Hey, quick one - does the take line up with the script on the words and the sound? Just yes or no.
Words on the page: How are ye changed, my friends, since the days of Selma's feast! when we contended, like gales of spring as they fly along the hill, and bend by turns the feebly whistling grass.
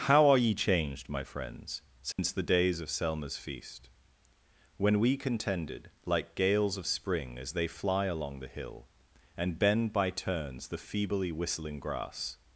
no